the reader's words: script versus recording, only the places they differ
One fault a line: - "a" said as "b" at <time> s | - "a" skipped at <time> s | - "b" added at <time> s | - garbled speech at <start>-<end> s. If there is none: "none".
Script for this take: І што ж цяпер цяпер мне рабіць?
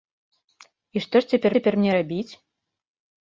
none